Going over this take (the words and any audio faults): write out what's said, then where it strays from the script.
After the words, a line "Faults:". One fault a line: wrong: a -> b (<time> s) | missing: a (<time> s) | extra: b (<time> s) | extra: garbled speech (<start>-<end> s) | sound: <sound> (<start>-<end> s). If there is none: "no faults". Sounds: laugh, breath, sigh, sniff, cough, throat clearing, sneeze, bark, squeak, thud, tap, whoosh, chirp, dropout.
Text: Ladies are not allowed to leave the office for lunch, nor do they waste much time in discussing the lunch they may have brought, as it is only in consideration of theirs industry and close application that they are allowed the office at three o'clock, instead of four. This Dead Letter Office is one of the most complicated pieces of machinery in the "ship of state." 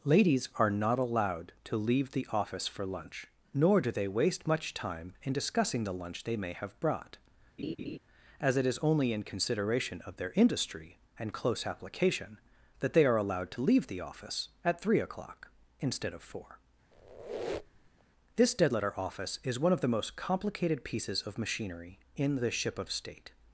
Ladies are not allowed to leave the office for lunch, nor do they waste much time in discussing the lunch they may have brought, as it is only in consideration of their industry and close application that they are allowed to leave the office at three o'clock, instead of four. This Dead Letter Office is one of the most complicated pieces of machinery in the "ship of state."
Faults:
sound: laugh (7.6-8.0 s)
wrong: theirs -> their (10.2 s)
extra: to leave (13.5 s)
sound: squeak (16.9-18.0 s)